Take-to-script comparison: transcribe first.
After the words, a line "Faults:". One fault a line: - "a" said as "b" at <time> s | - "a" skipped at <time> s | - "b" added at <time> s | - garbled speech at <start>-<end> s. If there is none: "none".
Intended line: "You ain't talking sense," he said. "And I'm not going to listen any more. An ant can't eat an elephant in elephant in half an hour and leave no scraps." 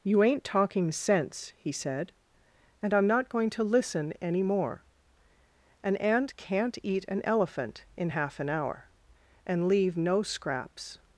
"You ain't talking sense," he said. "And I'm not going to listen any more. An ant can't eat an elephant in half an hour and leave no scraps."
Faults:
- "elephant in" skipped at 8.1 s